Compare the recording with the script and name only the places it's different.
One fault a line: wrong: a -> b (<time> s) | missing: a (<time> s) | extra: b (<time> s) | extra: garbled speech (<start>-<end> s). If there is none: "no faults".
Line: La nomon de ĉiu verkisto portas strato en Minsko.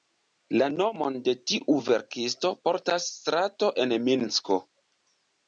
wrong: ĉiu -> tiu (1.5 s)